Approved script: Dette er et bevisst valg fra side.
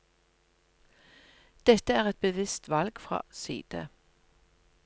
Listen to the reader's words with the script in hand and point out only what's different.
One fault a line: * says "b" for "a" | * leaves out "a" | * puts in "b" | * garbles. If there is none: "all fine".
all fine